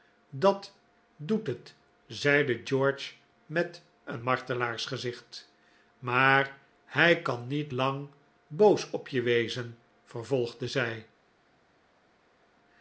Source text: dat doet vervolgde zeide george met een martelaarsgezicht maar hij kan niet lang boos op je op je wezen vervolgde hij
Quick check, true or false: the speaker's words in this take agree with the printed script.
false